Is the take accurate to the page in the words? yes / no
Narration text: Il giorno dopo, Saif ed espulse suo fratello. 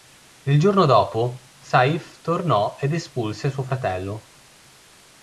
no